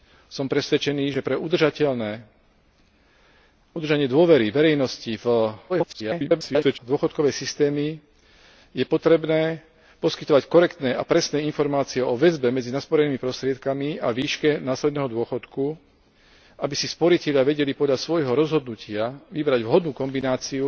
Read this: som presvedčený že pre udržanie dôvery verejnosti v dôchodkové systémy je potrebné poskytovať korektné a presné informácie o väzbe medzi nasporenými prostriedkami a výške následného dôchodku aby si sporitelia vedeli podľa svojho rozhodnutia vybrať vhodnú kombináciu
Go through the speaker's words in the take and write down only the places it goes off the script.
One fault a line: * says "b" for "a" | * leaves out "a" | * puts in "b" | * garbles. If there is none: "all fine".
* garbles